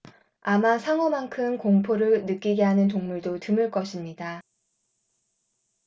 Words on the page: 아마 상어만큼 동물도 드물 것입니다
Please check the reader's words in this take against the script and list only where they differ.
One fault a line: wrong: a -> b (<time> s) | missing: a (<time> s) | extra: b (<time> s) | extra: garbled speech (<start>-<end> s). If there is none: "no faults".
extra: 공포를 느끼게 하는 (1.6 s)